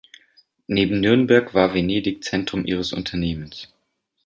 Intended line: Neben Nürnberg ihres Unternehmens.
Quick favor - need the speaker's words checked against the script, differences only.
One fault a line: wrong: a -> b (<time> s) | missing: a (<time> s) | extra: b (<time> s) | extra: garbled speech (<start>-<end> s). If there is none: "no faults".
extra: war Venedig Zentrum (1.5 s)